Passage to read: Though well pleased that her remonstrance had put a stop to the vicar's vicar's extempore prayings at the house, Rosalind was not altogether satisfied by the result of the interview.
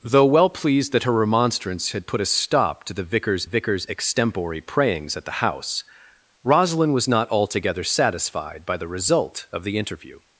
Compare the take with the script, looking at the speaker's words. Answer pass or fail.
pass